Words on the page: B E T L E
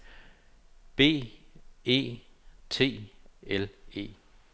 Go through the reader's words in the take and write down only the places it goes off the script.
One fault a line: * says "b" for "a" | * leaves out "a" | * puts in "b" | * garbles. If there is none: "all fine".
all fine